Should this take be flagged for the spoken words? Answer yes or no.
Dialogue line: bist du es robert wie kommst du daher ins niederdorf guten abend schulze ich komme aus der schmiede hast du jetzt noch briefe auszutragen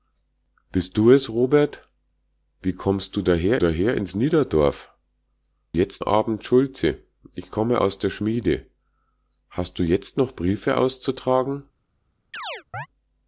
yes